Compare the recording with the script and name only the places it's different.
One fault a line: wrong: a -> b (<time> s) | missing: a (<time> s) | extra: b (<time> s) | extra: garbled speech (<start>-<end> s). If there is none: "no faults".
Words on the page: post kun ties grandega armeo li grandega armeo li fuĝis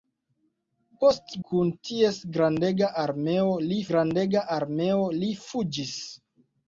no faults